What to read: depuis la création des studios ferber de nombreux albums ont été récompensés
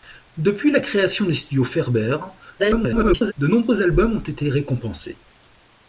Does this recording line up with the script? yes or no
no